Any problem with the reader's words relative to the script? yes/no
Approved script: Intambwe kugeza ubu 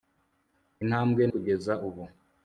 no